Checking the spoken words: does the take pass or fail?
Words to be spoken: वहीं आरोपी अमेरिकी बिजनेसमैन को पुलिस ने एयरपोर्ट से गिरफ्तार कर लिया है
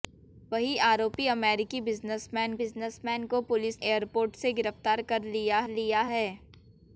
fail